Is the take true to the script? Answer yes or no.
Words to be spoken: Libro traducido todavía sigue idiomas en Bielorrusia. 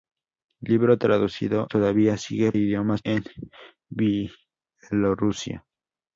yes